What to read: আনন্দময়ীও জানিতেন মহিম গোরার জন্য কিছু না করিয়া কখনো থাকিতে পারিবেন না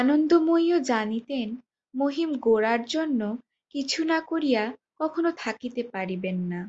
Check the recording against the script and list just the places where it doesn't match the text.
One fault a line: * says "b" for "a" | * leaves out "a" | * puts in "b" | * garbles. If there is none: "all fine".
all fine